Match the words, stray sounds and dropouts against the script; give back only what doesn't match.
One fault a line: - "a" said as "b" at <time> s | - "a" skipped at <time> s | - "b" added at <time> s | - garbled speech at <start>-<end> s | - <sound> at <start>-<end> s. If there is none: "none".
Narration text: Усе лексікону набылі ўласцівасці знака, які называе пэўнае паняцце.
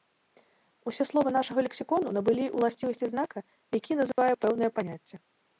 - "словы нашага" added at 1.1 s
- dropout at 4.1-4.2 s